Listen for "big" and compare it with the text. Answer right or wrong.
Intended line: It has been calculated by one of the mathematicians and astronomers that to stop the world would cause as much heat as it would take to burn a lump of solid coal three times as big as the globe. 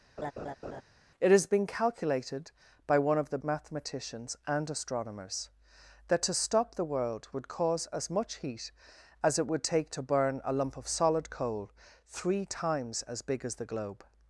right